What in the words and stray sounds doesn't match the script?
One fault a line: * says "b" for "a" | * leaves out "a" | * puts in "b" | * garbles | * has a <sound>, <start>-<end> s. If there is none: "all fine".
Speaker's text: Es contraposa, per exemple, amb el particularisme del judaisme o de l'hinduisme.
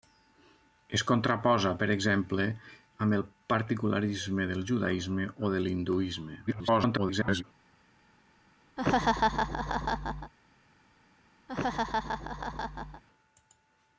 * garbles
* has a laugh, 8.8-10.3 s
* has a laugh, 11.5-13.0 s